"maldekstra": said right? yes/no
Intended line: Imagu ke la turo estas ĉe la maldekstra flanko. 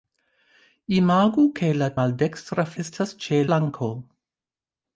no